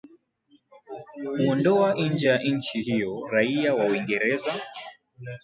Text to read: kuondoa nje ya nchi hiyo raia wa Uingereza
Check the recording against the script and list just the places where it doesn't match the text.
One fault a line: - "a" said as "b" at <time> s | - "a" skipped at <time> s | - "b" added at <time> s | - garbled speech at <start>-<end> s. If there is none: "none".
none